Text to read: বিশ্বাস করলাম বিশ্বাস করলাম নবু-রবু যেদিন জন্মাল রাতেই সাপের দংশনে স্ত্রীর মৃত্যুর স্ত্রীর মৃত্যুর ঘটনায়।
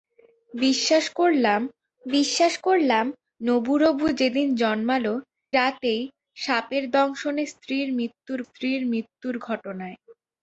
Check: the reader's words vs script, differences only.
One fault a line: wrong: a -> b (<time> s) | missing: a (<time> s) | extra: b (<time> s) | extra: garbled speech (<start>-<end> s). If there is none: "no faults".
no faults